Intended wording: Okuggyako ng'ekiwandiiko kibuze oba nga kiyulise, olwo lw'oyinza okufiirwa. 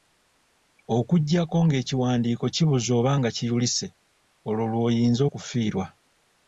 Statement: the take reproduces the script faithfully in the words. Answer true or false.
true